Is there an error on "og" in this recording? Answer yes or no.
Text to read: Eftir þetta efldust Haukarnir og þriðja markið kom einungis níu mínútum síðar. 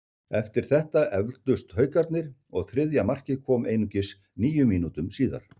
no